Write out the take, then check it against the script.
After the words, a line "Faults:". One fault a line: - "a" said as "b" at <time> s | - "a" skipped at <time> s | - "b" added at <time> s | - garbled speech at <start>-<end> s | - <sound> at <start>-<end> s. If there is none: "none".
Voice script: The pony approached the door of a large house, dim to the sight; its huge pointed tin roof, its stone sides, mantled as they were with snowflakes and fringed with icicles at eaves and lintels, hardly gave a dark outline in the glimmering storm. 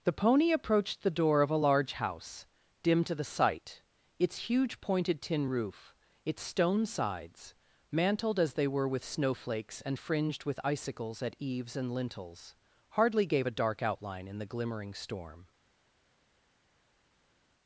The pony approached the door of a large house, dim to the sight; its huge pointed tin roof, its stone sides, mantled as they were with snowflakes and fringed with icicles at eaves and lintels, hardly gave a dark outline in the glimmering storm.
Faults:
none